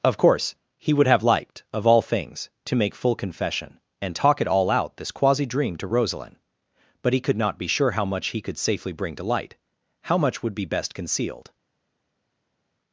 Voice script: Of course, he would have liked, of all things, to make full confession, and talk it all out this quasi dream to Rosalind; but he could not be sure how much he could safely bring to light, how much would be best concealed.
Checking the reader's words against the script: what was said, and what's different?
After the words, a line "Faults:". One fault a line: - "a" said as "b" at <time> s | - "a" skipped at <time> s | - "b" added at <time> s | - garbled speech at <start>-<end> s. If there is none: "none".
Of course, he would have liked, of all things, to make full confession, and talk it all out this quasi dream to Rosalind; but he could not be sure how much he could safely bring to light, how much would be best concealed.
Faults:
none